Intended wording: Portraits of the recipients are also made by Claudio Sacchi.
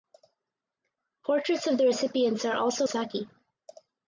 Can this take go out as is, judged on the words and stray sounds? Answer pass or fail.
fail